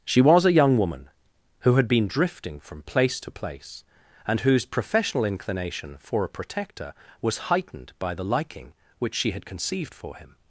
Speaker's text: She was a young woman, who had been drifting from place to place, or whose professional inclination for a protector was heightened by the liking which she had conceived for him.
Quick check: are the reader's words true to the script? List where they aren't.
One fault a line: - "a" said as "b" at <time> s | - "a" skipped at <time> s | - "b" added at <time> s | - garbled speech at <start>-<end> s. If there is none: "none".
- "or" said as "and" at 4.3 s